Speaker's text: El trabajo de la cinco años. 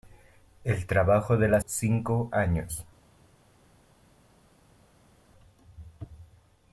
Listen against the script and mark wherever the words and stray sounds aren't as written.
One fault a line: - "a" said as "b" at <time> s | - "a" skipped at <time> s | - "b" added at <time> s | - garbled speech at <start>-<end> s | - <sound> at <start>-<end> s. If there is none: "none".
none